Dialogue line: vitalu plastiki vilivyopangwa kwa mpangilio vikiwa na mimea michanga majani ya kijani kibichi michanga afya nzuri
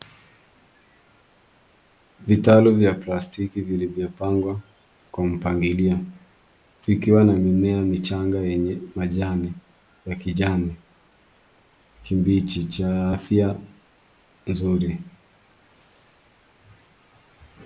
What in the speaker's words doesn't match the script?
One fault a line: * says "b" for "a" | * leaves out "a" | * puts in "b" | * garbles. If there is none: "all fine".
* puts in "vya"
* puts in "yenye"
* says "cha" for "michanga"